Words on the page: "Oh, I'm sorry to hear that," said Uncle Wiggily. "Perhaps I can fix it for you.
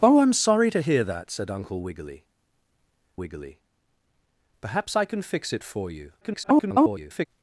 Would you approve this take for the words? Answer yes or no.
no